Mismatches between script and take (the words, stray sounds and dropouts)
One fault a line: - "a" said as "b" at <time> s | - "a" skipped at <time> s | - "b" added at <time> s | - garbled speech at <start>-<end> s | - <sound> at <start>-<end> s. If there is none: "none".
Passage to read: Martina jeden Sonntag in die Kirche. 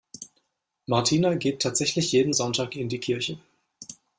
- "geht tatsächlich" added at 1.4 s